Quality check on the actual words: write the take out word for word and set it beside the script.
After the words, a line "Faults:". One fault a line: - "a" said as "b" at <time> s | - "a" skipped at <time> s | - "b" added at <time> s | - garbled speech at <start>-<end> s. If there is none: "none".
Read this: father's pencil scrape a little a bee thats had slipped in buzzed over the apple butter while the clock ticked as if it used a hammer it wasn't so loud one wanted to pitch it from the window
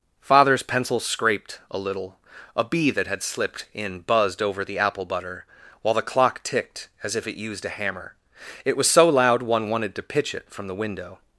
father's pencil scraped a little a bee that had slipped in buzzed over the apple butter while the clock ticked as if it used a hammer it was so loud one wanted to pitch it from the window
Faults:
- "scrape" said as "scraped" at 1.0 s
- "thats" said as "that" at 2.9 s
- "wasn't" said as "was" at 8.8 s